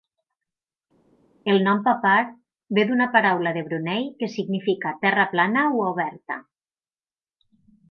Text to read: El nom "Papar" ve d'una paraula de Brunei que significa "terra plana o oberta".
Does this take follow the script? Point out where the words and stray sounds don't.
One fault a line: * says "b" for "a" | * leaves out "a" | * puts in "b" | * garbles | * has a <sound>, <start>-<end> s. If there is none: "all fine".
all fine